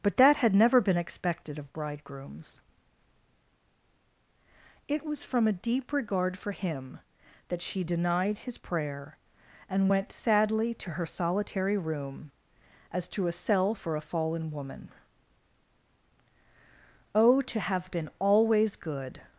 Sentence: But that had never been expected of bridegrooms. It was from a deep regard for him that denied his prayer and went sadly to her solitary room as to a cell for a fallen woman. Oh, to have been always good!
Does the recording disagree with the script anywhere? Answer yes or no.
yes